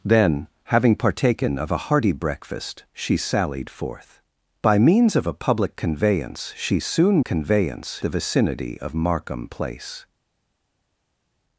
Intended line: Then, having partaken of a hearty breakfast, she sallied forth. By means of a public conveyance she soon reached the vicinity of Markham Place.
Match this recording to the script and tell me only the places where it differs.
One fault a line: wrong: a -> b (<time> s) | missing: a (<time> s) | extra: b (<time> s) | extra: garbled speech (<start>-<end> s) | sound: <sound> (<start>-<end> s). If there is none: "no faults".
wrong: reached -> conveyance (7.2 s)